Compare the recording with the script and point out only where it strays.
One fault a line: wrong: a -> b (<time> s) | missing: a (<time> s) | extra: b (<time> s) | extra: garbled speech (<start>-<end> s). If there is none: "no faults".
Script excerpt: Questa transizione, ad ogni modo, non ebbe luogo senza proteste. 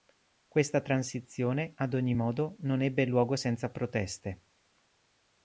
no faults